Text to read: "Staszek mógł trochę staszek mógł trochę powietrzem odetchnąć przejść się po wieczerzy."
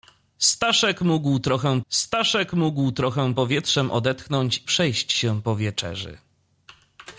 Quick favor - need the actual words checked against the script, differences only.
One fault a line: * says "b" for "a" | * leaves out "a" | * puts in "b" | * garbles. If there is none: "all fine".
all fine